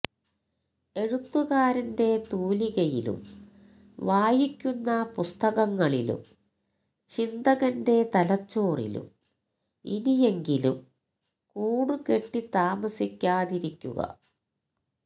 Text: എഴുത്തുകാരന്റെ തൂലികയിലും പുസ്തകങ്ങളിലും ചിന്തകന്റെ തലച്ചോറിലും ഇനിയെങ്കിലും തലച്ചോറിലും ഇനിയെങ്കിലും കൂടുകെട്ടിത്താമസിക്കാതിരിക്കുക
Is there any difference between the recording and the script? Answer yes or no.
yes